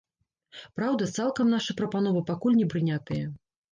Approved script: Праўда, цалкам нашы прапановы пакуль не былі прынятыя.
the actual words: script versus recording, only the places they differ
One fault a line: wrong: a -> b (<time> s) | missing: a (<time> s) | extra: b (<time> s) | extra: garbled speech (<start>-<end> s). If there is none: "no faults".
missing: былі (2.7 s)